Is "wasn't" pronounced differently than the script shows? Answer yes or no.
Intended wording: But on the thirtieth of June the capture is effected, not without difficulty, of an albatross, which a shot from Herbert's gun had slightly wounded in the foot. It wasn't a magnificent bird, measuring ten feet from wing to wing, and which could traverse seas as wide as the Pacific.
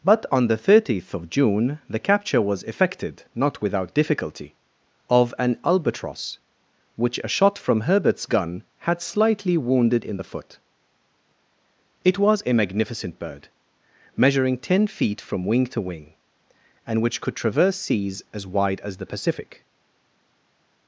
yes